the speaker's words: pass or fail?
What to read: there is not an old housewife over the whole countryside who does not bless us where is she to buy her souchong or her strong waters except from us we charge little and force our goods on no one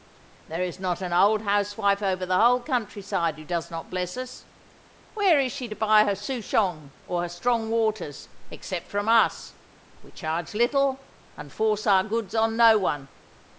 pass